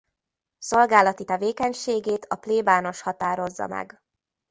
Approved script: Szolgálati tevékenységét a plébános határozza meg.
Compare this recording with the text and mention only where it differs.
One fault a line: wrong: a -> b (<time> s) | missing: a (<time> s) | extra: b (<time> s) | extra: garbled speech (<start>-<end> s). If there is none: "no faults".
no faults